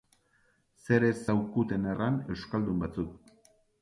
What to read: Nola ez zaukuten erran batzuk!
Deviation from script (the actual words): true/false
true